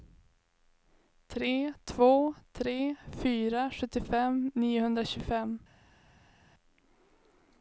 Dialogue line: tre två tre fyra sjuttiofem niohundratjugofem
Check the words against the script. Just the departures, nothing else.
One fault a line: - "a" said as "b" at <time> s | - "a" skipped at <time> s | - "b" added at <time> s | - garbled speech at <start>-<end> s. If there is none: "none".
none